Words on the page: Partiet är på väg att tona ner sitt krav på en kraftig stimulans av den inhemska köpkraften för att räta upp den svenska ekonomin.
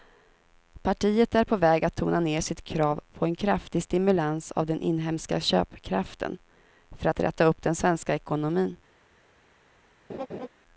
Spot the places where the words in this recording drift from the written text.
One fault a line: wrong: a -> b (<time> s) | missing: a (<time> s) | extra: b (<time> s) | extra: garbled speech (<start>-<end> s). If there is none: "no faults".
no faults